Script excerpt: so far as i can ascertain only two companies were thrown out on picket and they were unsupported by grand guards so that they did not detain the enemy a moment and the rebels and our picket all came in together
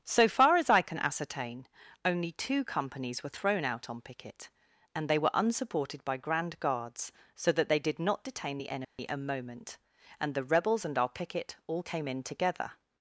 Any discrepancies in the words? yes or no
no